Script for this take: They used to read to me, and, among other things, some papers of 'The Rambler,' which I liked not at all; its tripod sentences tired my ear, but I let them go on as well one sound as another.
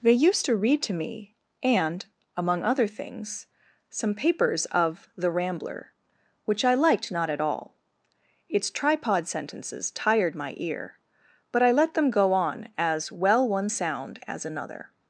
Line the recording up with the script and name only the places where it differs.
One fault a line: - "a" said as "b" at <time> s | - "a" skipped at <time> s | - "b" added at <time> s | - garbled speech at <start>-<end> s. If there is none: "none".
none